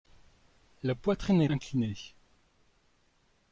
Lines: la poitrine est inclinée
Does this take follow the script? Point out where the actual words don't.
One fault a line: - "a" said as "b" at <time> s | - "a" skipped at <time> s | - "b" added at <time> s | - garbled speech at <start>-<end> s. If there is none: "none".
none